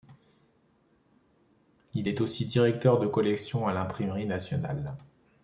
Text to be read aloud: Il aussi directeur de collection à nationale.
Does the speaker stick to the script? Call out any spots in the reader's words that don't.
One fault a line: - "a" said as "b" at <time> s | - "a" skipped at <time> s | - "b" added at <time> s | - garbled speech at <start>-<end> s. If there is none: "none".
- "est" added at 2.1 s
- "l'Imprimerie" added at 3.7 s